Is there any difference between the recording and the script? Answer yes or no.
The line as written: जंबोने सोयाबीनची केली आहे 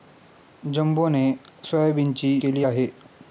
no